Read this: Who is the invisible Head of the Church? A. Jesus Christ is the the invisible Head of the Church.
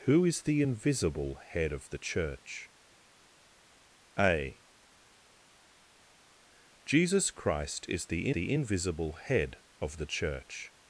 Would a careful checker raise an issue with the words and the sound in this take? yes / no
no